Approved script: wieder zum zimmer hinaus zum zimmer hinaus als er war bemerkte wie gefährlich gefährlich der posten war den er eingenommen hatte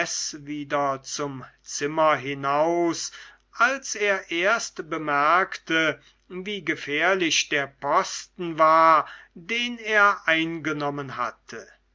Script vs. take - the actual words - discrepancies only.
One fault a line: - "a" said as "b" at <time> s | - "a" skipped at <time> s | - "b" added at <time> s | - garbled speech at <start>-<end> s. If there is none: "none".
- "zum zimmer hinaus" skipped at 3.1 s
- "war" said as "erst" at 4.3 s
- "gefährlich" skipped at 7.5 s